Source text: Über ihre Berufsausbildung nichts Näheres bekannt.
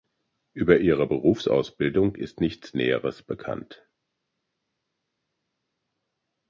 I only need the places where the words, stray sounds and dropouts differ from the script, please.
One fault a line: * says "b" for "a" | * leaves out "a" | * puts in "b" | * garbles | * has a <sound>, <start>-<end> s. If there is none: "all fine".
* puts in "ist"